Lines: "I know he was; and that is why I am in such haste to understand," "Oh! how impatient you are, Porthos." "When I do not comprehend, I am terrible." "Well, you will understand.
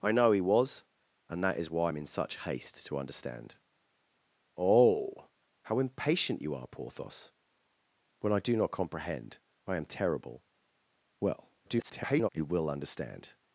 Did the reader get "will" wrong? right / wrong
right